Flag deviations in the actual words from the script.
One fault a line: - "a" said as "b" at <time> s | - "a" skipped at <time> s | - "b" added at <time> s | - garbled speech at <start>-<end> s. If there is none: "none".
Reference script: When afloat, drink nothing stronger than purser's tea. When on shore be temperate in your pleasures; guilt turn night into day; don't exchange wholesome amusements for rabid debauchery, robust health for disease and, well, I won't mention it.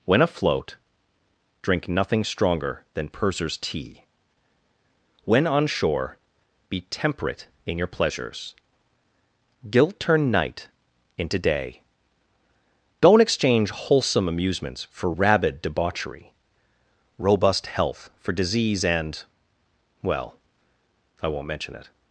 none